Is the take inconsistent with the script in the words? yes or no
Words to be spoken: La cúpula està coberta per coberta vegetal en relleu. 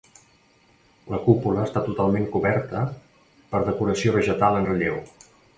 yes